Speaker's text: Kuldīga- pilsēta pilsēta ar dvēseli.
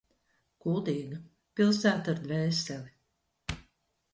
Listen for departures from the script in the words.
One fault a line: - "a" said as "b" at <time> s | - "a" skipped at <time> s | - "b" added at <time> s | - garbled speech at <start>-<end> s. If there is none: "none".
- "pilsēta" skipped at 2.1 s